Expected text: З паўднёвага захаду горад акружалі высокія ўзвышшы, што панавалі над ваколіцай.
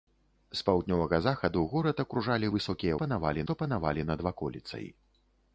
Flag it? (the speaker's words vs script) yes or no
yes